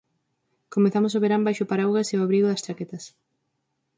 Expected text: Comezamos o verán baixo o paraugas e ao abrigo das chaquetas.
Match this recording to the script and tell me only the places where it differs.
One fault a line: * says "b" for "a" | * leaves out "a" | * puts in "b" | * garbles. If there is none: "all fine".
all fine